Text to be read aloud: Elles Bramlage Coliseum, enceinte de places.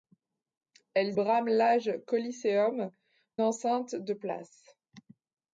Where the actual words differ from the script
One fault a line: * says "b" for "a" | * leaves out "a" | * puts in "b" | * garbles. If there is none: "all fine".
all fine